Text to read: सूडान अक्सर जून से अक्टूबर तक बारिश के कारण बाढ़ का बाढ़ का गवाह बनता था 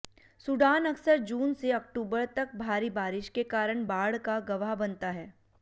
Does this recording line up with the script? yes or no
no